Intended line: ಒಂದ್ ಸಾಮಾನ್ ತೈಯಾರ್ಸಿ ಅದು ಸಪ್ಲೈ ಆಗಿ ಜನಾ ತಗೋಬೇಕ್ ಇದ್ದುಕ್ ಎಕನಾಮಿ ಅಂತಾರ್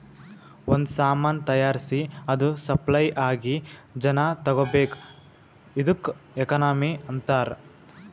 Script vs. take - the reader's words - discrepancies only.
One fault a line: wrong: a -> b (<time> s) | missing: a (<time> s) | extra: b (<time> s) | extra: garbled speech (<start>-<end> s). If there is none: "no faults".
no faults